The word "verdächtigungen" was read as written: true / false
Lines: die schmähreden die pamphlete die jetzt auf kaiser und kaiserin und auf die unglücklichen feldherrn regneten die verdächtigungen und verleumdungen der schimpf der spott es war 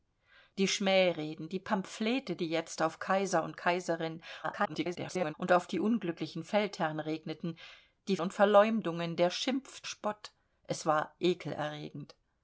false